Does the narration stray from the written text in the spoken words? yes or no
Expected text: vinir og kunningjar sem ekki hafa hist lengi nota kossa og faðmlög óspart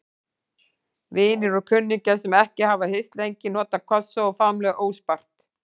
no